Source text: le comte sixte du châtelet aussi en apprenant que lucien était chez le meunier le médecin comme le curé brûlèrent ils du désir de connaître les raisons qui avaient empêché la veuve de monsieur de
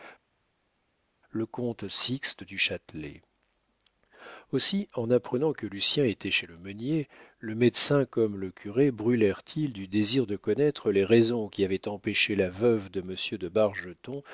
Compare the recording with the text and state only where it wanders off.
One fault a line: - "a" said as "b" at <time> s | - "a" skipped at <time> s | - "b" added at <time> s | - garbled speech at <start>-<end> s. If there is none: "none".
none